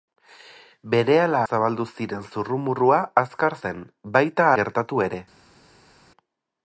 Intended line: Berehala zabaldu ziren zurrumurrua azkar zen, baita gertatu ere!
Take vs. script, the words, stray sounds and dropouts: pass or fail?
pass